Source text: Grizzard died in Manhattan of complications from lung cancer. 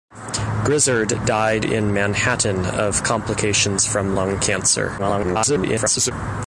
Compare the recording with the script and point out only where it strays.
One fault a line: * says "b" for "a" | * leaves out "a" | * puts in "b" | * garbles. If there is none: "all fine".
* garbles